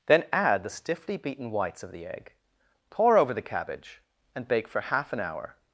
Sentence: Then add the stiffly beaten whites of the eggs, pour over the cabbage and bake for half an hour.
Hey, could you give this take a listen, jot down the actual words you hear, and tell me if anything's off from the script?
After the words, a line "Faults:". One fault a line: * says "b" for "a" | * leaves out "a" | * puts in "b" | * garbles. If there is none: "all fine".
Then add the stiffly beaten whites of the egg, pour over the cabbage and bake for half an hour.
Faults:
* says "egg" for "eggs"